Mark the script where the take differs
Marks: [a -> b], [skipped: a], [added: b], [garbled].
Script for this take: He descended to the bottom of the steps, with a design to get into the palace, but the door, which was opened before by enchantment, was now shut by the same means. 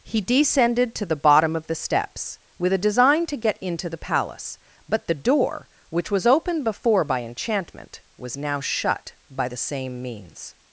He descended to the bottom of the steps, with a design to get into the palace, but the door, which was opened before by enchantment, was now shut by the same means.